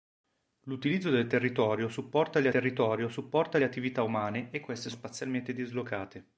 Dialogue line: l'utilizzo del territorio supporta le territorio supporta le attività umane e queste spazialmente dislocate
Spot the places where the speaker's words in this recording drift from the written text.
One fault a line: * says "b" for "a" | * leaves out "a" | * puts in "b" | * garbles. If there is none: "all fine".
all fine